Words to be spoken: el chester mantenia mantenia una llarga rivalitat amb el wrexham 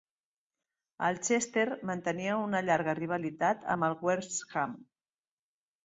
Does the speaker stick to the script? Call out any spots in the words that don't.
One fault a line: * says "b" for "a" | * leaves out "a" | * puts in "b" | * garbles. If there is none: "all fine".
* leaves out "mantenia"